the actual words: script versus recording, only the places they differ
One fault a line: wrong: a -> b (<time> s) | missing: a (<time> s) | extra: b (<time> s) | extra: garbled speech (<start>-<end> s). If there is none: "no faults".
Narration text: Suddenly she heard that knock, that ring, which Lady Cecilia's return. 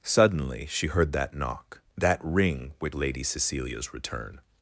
no faults